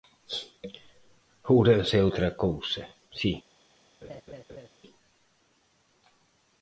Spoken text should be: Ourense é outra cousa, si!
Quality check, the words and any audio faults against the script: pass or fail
fail